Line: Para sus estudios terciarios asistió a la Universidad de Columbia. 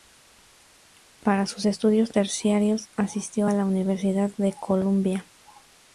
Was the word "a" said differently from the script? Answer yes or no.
no